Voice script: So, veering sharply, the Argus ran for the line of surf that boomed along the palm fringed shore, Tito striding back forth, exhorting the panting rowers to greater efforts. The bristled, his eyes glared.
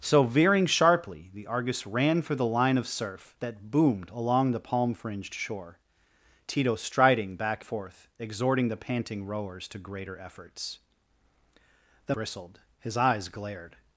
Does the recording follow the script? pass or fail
pass